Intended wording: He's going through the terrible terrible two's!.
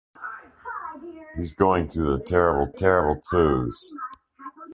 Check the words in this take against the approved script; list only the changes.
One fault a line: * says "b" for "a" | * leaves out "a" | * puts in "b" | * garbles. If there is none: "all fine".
all fine